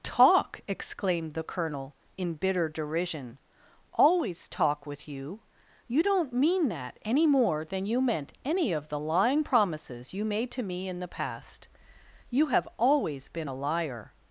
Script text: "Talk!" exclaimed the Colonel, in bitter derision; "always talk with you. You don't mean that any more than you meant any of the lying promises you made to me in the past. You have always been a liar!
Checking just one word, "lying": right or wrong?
right